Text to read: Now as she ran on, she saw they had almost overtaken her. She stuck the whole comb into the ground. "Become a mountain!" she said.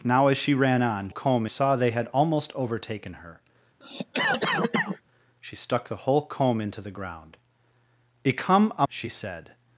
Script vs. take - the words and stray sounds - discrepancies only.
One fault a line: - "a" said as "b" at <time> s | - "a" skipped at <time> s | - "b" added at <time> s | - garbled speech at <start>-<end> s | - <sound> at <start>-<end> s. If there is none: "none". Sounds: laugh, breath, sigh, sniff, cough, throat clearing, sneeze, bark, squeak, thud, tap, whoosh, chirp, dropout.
- "she" said as "comb" at 1.1 s
- cough at 3.8-5.0 s
- "mountain" skipped at 8.9 s